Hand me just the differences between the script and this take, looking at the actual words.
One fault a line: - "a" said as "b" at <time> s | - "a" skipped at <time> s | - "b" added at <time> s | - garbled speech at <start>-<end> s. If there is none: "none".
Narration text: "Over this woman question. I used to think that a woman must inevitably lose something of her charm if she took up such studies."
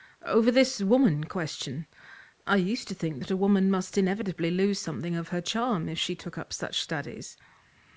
none